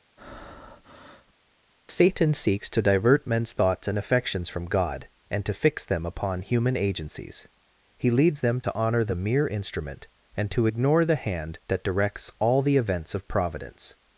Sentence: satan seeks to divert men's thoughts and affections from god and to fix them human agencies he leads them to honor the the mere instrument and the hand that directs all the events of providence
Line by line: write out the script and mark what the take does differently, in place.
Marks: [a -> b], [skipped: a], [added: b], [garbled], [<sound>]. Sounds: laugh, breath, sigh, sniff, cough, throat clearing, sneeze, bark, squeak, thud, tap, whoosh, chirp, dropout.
[breath] satan seeks to divert men's thoughts and affections from god and to fix them [added: upon] human agencies he leads them to honor the [skipped: the] mere instrument and [added: to ignore] the hand that directs all the events of providence